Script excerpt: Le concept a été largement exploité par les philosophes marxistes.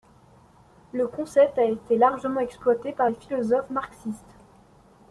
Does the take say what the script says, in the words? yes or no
yes